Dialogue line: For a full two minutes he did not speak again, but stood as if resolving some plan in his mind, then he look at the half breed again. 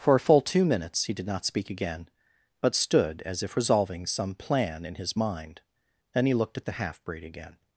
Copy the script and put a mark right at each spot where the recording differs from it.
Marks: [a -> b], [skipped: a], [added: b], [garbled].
For a full two minutes he did not speak again, but stood as if resolving some plan in his mind, then he [look -> looked] at the half breed again.